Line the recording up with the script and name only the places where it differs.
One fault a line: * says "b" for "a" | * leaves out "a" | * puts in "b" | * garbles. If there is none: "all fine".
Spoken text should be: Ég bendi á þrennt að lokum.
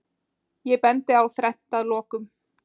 all fine